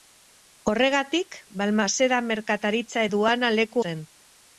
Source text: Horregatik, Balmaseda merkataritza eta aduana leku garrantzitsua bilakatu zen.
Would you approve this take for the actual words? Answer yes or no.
no